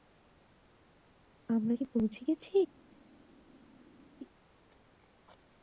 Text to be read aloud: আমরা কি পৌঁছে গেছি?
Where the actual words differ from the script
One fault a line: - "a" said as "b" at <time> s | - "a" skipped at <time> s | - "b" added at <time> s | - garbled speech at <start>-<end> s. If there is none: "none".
none